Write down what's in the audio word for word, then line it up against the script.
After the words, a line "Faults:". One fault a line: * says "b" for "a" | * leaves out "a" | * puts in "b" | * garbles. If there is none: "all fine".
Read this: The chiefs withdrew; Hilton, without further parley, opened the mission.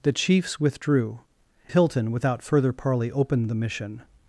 The chiefs withdrew; Hilton, without further parley, opened the mission.
Faults:
all fine